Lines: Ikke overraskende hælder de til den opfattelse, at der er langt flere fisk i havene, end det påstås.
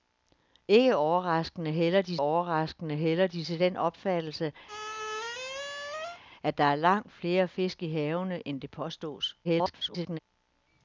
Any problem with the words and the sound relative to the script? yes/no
yes